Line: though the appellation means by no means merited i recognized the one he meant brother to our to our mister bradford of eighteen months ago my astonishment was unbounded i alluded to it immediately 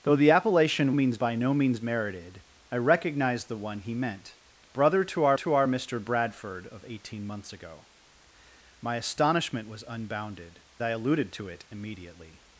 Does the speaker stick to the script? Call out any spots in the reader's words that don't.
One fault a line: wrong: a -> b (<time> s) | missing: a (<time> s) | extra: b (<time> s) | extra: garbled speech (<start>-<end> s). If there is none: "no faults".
no faults